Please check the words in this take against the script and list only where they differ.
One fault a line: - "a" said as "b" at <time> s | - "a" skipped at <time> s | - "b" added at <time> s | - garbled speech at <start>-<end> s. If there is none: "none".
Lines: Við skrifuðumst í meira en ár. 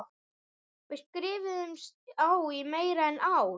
- "á" added at 2.2 s